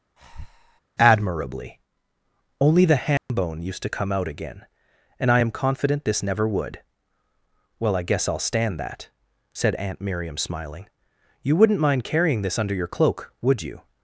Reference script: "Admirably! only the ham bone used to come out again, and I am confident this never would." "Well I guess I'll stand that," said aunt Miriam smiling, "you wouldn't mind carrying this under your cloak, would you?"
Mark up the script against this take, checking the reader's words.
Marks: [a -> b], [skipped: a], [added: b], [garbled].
"Admirably! only the ham bone used to come out again, and I am confident this never would." "Well I guess I'll stand that," said aunt Miriam smiling, "you wouldn't mind carrying this under your cloak, would you?"